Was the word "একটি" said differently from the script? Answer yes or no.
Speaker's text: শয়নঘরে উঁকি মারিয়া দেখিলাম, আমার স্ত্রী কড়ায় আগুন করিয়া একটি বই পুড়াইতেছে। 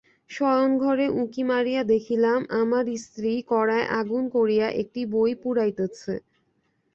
no